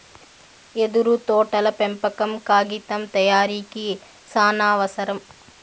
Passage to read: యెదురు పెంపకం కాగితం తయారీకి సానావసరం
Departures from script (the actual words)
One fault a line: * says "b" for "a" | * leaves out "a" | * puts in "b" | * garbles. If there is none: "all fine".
* puts in "తోటల"